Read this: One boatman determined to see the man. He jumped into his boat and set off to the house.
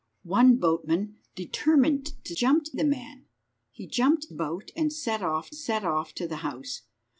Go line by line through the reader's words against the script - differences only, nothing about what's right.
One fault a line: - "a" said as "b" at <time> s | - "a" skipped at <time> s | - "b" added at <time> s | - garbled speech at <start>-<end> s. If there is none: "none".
- "see" said as "jumped" at 2.3 s
- "into his boat and" said as "boat and set off" at 4.3 s